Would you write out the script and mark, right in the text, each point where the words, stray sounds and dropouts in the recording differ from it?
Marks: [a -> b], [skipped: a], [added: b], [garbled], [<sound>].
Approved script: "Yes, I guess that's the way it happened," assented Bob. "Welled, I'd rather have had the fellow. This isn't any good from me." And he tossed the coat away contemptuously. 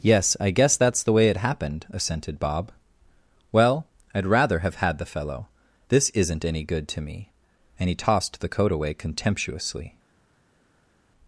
"Yes, I guess that's the way it happened," assented Bob. ["Welled, -> Well] I'd rather have had the fellow. This isn't any good [from -> to] me." And he tossed the coat away contemptuously.